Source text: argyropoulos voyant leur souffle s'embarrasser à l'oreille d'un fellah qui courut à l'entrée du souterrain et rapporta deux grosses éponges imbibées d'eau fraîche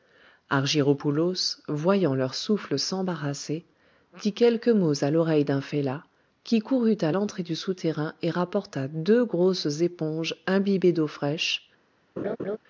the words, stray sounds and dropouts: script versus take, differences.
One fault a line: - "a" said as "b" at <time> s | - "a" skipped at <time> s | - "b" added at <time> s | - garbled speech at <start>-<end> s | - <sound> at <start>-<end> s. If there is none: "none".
- "dit quelques mots" added at 4.2 s
- laugh at 12.2-12.6 s